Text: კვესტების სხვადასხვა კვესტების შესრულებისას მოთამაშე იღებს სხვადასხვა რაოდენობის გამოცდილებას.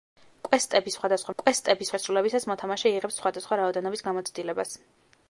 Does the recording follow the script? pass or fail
pass